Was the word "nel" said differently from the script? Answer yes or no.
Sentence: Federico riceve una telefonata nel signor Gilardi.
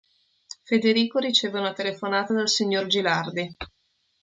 yes